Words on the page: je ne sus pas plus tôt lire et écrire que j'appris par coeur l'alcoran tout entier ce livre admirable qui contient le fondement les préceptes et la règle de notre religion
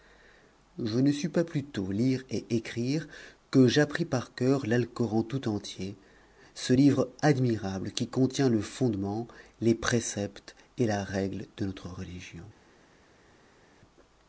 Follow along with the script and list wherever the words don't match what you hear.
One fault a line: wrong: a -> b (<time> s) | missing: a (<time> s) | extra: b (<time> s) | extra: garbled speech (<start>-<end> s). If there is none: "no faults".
no faults